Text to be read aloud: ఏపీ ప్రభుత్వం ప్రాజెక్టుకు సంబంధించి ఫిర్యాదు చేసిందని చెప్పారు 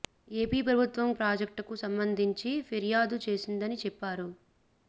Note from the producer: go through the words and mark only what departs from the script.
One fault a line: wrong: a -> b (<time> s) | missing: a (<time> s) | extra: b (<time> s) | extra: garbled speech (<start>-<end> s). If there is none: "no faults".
no faults